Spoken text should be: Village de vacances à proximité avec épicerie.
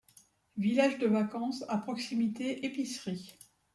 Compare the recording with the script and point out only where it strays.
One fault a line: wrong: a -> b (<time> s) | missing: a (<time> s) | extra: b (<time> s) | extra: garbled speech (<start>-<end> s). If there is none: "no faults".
missing: avec (2.6 s)